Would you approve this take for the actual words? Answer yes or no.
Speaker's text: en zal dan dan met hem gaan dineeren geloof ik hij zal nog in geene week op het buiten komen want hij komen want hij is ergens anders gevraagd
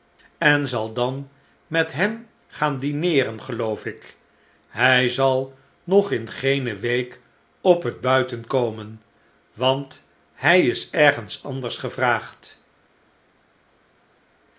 no